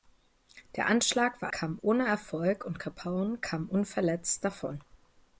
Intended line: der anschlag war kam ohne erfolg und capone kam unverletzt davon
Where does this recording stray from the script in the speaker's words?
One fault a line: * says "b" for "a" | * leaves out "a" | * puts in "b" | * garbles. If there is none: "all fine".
all fine